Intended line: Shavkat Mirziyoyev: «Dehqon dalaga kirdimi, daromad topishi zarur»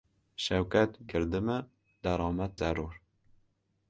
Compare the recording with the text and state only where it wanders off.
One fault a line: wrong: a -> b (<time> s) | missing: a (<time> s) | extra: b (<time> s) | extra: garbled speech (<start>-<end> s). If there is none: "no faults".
missing: Mirziyoyev Dehqon dalaga (0.9 s)
missing: topishi (2.6 s)